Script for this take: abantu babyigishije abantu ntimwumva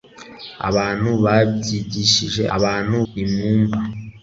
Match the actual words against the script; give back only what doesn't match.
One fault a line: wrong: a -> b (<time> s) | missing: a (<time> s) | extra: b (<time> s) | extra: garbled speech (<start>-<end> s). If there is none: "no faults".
no faults